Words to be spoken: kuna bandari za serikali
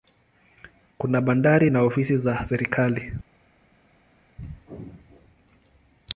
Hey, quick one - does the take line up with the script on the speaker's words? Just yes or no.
no